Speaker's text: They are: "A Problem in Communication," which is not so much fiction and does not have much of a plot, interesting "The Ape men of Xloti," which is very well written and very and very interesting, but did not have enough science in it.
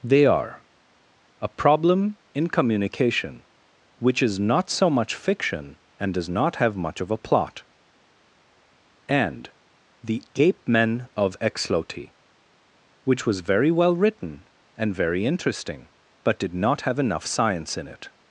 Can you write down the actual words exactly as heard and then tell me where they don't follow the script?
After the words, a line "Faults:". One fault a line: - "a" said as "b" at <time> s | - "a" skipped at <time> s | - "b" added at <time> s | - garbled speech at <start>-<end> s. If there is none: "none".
They are: "A Problem in Communication," which is not so much fiction and does not have much of a plot, and "The Ape men of Xloti," which was very well written and very interesting, but did not have enough science in it.
Faults:
- "interesting" said as "and" at 9.1 s
- "is" said as "was" at 13.2 s
- "and very" skipped at 15.2 s